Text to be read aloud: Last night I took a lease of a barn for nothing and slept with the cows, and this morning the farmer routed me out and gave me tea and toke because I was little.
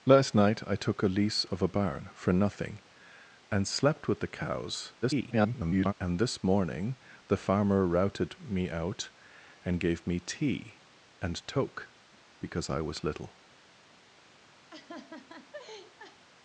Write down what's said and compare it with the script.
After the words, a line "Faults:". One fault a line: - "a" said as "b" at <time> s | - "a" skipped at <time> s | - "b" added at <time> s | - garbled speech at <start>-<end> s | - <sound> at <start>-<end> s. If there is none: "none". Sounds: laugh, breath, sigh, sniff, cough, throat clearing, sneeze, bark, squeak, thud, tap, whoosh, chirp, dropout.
Last night I took a lease of a barn for nothing and slept with the cows, [garbled] and this morning the farmer routed me out and gave me tea and toke because I was little.
Faults:
- garbled speech at 5.0-5.9 s
- laugh at 14.7-16.2 s